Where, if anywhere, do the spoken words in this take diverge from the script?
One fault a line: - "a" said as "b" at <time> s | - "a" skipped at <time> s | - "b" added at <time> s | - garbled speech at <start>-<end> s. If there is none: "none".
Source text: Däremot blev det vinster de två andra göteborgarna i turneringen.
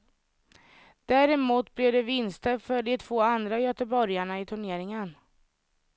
- "för" added at 2.6 s